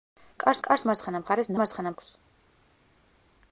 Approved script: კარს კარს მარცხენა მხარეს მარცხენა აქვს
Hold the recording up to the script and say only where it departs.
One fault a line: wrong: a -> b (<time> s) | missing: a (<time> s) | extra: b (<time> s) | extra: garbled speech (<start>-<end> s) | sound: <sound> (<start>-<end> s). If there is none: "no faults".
no faults